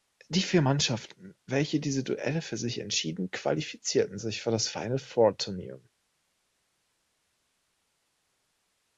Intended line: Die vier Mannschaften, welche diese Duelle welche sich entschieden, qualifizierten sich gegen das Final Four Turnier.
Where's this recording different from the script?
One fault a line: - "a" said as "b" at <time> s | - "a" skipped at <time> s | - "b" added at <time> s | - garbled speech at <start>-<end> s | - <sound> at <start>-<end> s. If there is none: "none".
- "welche" said as "für" at 2.4 s
- "gegen" said as "für" at 4.4 s